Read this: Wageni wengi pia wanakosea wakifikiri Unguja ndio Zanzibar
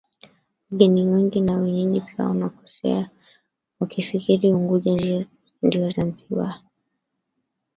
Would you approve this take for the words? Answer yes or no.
no